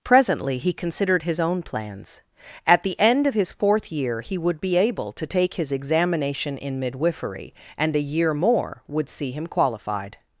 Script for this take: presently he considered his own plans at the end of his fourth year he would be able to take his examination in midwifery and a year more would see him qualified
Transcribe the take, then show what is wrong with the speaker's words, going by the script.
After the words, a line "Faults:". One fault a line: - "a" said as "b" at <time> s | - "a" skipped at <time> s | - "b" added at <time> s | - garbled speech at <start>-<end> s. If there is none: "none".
presently he considered his own plans at the end of his fourth year he would be able to take his examination in midwifery and a year more would see him qualified
Faults:
none